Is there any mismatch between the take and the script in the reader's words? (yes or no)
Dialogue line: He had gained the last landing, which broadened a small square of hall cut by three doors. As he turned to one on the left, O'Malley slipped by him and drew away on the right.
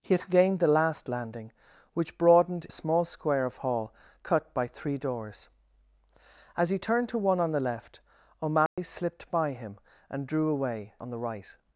no